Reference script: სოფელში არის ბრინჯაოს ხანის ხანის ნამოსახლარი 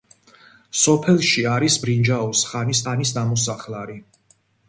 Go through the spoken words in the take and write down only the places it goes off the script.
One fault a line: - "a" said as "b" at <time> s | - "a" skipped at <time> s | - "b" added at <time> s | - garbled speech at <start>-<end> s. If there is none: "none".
none